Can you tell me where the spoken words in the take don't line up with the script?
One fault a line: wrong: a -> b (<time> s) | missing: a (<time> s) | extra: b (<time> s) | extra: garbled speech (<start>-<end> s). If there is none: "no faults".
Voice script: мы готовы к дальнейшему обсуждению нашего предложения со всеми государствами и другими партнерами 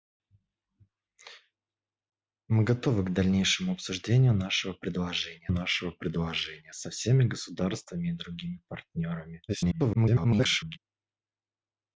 extra: нашего предложения (5.5 s)
extra: garbled speech (9.5-10.8 s)